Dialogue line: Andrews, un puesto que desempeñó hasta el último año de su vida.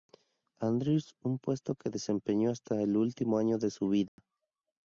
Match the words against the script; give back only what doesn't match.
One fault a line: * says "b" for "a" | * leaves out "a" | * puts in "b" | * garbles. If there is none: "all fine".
all fine